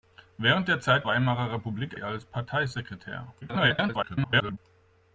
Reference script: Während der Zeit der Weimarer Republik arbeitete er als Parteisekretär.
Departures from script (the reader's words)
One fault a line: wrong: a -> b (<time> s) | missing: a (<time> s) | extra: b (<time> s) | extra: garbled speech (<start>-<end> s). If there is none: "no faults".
missing: der (1.1 s)
missing: arbeitete (2.0 s)
extra: garbled speech (3.4-4.6 s)